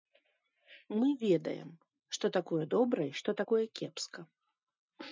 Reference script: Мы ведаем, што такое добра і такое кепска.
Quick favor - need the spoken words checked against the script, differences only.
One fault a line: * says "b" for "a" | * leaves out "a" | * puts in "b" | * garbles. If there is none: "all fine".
* puts in "што"